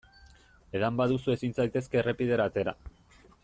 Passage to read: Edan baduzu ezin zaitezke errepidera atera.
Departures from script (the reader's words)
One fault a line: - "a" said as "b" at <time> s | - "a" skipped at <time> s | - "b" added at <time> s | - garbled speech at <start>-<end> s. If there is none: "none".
none